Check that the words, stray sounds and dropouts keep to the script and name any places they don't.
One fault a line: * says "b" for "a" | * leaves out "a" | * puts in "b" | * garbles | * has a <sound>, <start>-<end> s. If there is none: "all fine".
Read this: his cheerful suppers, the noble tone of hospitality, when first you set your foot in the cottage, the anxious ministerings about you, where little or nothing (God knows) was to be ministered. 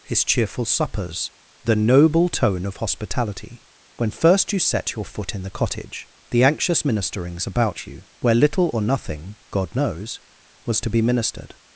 all fine